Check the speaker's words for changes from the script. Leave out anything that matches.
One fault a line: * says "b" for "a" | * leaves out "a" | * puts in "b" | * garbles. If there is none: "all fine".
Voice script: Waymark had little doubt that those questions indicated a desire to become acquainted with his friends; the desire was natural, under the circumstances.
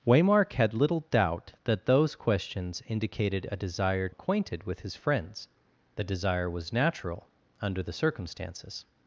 * leaves out "to become"